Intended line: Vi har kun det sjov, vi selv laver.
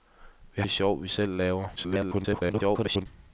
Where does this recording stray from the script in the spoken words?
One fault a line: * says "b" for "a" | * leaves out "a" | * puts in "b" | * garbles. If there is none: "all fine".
* leaves out "har kun"
* garbles